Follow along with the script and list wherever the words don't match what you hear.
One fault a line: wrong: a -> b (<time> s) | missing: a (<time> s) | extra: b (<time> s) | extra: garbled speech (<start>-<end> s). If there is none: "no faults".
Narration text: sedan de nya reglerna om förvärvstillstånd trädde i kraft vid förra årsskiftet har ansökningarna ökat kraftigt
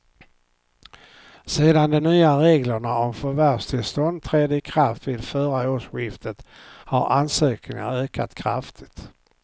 no faults